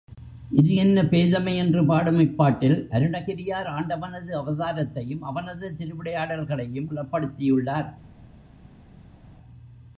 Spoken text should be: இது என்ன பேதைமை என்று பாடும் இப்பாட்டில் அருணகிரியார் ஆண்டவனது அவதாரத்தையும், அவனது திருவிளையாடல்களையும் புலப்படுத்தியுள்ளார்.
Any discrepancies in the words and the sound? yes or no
no